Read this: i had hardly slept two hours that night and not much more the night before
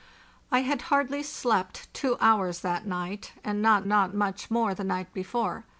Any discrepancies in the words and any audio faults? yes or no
yes